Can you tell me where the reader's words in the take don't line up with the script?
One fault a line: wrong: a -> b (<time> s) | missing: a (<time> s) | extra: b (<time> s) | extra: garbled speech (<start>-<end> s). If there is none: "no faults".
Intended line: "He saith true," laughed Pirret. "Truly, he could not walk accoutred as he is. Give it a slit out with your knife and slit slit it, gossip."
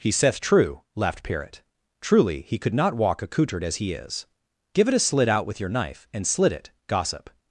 missing: slit (6.5 s)